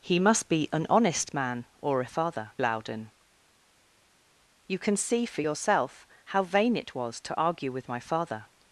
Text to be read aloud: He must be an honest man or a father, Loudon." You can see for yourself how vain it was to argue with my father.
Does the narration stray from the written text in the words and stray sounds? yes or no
no